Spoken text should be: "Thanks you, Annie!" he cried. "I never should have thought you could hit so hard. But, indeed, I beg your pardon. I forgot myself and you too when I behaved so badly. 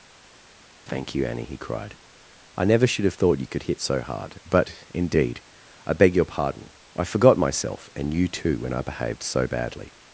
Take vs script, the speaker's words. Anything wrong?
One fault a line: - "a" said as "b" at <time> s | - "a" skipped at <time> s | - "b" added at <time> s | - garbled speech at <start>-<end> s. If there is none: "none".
- "Thanks" said as "Thank" at 0.9 s